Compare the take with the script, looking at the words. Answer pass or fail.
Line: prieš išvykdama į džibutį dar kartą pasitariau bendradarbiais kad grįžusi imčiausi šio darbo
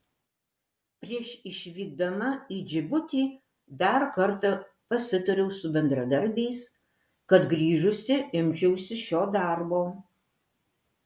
fail